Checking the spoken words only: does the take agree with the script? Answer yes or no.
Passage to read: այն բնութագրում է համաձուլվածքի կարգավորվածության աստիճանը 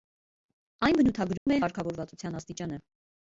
no